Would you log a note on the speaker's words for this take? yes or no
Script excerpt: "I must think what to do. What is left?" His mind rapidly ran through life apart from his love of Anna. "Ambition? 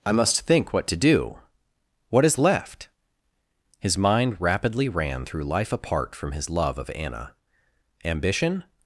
no